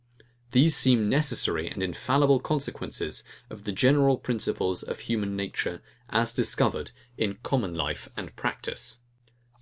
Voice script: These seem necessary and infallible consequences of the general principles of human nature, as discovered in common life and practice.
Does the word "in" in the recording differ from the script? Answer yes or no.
no